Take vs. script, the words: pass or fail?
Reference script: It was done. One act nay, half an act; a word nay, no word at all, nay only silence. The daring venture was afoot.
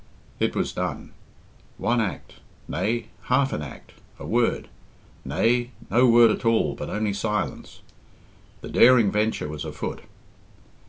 fail